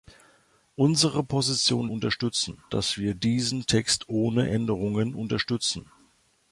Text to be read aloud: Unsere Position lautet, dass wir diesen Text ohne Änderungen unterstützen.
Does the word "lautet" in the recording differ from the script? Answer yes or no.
yes